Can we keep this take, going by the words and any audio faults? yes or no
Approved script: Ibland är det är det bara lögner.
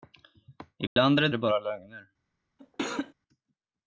no